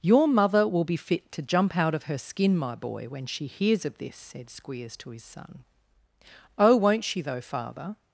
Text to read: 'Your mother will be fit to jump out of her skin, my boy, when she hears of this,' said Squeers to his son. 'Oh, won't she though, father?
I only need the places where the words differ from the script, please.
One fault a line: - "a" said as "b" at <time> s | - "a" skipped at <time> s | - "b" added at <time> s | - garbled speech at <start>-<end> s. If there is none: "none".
none